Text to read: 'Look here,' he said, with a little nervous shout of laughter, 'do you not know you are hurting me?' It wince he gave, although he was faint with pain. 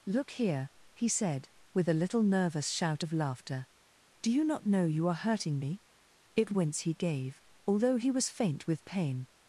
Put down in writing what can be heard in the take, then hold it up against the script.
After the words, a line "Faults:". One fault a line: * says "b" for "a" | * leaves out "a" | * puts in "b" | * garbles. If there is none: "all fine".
'Look here,' he said, with a little nervous shout of laughter, 'do you not know you are hurting me?' It wince he gave, although he was faint with pain.
Faults:
all fine